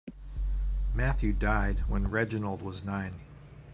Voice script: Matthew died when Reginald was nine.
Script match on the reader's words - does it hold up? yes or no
yes